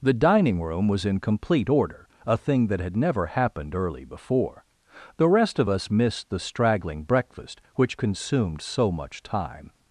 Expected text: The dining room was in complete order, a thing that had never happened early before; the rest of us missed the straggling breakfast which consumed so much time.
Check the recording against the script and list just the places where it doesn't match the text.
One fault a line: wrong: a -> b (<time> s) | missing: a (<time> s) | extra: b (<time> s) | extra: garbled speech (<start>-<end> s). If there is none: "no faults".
no faults